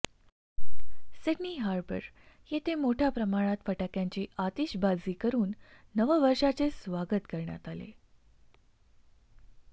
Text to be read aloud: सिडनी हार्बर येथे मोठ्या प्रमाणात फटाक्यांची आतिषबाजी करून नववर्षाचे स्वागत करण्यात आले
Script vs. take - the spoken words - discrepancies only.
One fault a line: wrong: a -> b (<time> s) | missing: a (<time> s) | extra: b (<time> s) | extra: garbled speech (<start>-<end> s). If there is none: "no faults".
no faults